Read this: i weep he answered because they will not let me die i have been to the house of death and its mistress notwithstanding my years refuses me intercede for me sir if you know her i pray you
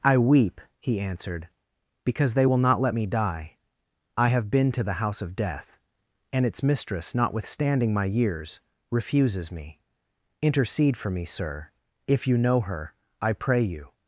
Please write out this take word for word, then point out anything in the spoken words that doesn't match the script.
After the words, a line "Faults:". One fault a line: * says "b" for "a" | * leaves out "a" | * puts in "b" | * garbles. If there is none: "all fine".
i weep he answered because they will not let me die i have been to the house of death and its mistress notwithstanding my years refuses me intercede for me sir if you know her i pray you
Faults:
all fine